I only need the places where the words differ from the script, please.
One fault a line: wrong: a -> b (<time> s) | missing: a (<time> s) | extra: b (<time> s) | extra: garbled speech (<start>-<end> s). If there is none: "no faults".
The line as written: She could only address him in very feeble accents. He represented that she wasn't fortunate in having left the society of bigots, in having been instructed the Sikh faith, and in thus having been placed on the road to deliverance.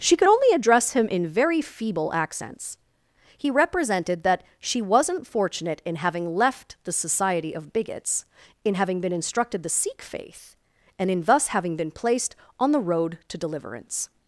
no faults